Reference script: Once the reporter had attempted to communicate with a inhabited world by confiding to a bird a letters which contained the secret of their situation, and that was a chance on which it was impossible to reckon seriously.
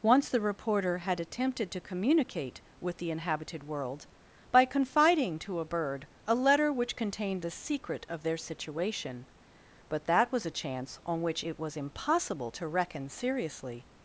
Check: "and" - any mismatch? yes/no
yes